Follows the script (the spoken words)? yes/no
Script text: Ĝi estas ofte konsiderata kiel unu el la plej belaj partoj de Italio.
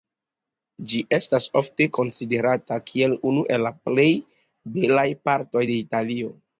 yes